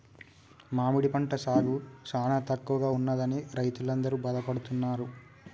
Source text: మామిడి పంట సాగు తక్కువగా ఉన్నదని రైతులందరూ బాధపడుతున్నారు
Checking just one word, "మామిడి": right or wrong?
right